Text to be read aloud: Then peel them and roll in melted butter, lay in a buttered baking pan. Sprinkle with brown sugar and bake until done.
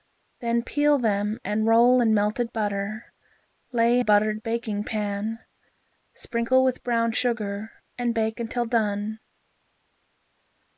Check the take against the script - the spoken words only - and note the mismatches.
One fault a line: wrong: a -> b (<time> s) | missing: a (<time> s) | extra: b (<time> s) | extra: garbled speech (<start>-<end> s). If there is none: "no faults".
missing: in (4.0 s)